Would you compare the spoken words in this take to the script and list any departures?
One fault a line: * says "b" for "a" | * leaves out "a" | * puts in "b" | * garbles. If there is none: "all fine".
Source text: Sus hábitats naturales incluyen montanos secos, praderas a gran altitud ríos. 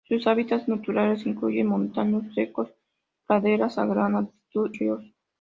all fine